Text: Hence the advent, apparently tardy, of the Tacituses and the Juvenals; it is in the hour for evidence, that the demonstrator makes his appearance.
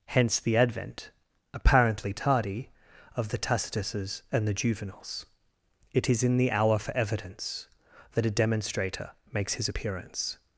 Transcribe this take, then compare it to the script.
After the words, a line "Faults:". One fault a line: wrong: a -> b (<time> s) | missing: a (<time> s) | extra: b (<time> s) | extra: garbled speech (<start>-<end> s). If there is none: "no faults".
Hence the advent, apparently tardy, of the Tacituses and the Juvenals; it is in the hour for evidence, that a demonstrator makes his appearance.
Faults:
wrong: the -> a (8.2 s)